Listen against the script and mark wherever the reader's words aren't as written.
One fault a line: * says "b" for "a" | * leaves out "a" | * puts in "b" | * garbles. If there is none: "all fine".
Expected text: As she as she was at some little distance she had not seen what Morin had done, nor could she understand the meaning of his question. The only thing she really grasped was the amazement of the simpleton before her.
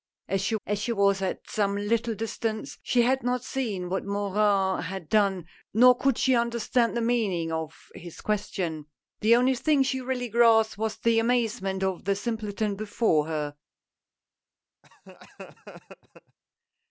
all fine